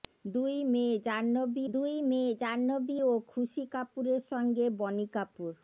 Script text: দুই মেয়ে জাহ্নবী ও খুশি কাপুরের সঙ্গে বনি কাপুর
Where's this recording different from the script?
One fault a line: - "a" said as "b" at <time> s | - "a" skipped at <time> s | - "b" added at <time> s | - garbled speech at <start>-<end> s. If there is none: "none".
- "দুই মেয়ে জাহ্নবী" added at 1.7 s